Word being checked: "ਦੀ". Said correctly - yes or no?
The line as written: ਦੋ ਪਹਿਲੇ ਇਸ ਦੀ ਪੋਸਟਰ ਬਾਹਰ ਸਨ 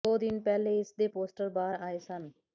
no